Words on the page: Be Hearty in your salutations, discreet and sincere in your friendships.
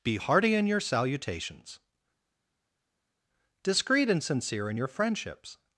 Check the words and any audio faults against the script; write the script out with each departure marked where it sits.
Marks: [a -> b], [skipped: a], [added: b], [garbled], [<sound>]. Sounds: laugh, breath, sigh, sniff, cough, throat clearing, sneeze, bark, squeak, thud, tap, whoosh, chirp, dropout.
Be Hearty in your salutations, discreet and sincere in your friendships.